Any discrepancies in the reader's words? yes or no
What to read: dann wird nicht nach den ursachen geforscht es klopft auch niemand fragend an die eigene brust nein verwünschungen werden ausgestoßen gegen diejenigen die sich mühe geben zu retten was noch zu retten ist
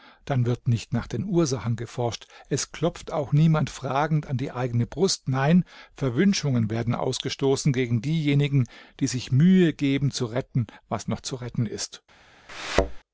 no